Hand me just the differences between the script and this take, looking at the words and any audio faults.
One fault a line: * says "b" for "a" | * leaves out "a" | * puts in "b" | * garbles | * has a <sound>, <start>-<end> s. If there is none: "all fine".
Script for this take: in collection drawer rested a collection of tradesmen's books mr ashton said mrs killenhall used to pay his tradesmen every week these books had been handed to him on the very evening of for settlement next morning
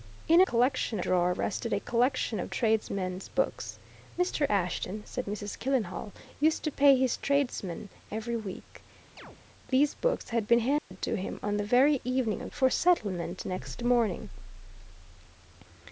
* has a chirp, 9.2-9.4 s
* has a dropout, 10.8-10.9 s